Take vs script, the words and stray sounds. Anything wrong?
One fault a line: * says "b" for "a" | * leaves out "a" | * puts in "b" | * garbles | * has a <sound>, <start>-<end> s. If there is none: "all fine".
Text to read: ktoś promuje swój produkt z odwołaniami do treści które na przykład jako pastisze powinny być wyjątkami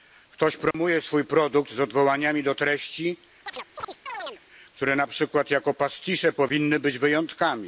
* has a dropout, 0.7-0.7 s
* has a chirp, 3.5-4.4 s